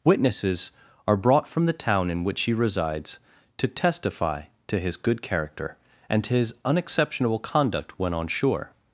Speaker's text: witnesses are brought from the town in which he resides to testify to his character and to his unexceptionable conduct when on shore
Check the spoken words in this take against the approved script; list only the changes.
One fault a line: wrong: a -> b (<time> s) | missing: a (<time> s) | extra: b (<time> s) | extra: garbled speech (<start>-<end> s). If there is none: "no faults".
extra: good (5.0 s)